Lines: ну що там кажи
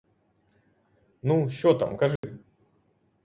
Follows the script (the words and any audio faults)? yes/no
no